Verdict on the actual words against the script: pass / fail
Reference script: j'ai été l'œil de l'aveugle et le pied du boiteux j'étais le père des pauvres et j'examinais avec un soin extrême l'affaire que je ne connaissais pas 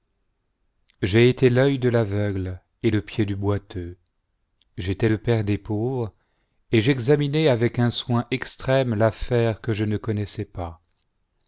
pass